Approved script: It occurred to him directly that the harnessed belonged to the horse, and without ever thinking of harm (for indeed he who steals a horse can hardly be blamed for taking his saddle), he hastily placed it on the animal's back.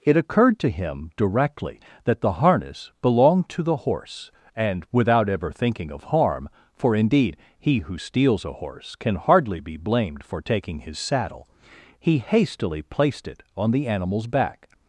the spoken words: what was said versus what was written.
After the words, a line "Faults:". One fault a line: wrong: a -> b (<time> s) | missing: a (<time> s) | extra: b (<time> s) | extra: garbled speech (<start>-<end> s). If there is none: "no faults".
It occurred to him directly that the harness belonged to the horse, and without ever thinking of harm (for indeed he who steals a horse can hardly be blamed for taking his saddle), he hastily placed it on the animal's back.
Faults:
wrong: harnessed -> harness (2.3 s)